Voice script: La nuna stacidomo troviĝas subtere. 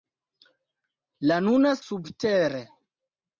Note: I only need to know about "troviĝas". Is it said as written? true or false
false